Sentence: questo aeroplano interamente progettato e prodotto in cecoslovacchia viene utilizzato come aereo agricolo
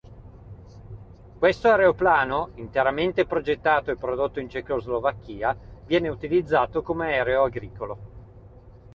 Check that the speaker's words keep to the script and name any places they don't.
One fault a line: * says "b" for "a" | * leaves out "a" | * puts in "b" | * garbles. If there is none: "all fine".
all fine